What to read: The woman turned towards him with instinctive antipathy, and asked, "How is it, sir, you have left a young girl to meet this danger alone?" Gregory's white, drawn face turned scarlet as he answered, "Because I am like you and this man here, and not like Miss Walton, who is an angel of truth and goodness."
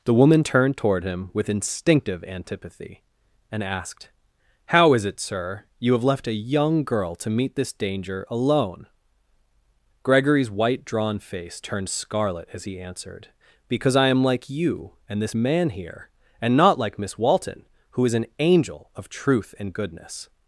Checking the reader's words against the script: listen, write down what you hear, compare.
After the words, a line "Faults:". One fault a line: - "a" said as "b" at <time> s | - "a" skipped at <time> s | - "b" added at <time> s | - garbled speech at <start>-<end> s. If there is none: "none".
The woman turned toward him with instinctive antipathy, and asked, "How is it, sir, you have left a young girl to meet this danger alone?" Gregory's white, drawn face turned scarlet as he answered, "Because I am like you and this man here, and not like Miss Walton, who is an angel of truth and goodness."
Faults:
- "towards" said as "toward" at 0.8 s